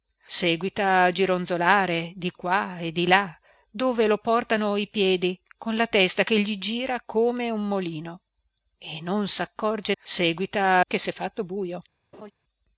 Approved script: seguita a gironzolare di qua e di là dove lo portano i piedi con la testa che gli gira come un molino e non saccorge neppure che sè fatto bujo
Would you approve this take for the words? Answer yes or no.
no